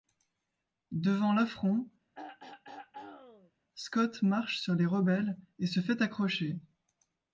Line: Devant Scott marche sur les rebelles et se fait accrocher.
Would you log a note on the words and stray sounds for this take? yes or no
yes